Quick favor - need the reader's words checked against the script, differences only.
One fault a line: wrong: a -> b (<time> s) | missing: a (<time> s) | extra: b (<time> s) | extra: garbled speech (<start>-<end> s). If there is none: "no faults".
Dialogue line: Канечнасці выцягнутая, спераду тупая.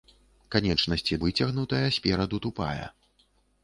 no faults